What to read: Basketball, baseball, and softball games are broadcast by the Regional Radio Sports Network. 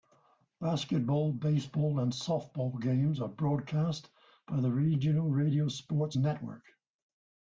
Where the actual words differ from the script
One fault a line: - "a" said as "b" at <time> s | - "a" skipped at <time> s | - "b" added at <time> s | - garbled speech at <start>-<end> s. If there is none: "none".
none